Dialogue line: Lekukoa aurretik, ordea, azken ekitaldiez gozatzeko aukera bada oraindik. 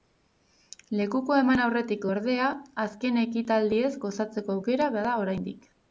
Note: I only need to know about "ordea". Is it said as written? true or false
true